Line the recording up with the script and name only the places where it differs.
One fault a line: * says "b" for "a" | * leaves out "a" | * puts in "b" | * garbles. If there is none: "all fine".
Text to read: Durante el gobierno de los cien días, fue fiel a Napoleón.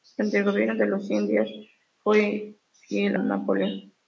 * leaves out "a"